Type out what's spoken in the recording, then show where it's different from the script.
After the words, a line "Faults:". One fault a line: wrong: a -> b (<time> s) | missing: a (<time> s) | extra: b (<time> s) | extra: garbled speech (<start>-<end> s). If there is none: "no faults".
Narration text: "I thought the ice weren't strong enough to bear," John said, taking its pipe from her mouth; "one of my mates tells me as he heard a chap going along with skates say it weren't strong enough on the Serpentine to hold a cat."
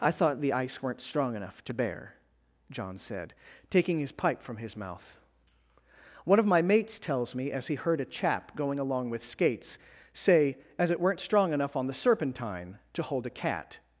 "I thought the ice weren't strong enough to bear," John said, taking his pipe from his mouth; "one of my mates tells me as he heard a chap going along with skates say as it weren't strong enough on the Serpentine to hold a cat."
Faults:
wrong: its -> his (4.0 s)
wrong: her -> his (4.6 s)
extra: as (10.8 s)